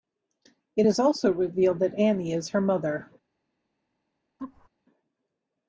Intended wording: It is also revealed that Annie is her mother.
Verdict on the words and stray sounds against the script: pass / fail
fail